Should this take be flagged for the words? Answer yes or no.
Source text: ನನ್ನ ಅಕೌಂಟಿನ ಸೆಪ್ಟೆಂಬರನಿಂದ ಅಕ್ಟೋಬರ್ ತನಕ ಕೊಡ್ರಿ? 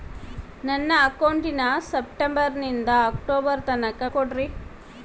no